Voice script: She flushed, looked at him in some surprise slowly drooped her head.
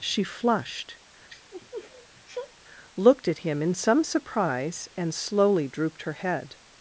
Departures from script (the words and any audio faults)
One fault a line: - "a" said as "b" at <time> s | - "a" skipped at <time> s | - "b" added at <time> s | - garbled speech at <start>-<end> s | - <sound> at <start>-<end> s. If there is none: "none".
- sniff at 1.3-2.5 s
- "and" added at 5.0 s